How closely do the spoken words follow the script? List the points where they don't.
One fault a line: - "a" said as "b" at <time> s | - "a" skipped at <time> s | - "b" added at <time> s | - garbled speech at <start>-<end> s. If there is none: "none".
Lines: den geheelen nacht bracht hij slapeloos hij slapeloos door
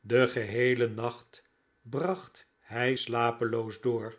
- "hij slapeloos" skipped at 3.8 s